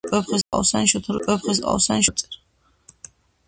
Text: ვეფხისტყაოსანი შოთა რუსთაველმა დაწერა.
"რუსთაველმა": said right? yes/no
no